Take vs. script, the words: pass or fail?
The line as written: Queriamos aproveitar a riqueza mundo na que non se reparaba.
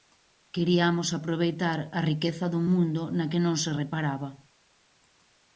fail